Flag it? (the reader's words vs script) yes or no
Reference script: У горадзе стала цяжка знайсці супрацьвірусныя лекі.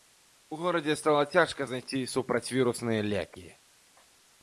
no